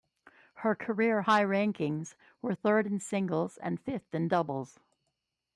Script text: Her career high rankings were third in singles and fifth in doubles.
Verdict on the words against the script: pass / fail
pass